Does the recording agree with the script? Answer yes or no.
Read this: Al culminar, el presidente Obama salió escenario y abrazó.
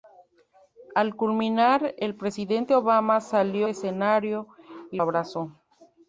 yes